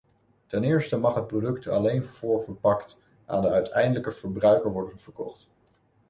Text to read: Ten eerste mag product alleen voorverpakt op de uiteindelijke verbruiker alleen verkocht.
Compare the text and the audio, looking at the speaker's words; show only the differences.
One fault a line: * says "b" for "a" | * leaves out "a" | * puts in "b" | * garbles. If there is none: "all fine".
* puts in "het"
* says "aan" for "op"
* says "worden" for "alleen"